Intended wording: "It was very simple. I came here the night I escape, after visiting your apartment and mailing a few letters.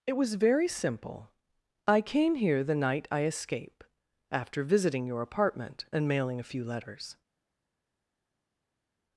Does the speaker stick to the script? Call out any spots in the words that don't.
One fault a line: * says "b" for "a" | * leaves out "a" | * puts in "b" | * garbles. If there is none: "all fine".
all fine